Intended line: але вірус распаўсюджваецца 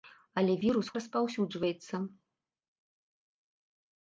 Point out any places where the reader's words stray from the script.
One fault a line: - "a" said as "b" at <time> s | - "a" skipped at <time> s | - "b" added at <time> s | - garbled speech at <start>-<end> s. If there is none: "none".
none